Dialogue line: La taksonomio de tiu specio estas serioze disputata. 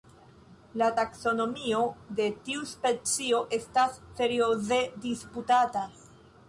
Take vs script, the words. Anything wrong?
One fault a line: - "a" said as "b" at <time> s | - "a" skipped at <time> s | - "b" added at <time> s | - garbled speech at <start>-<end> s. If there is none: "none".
none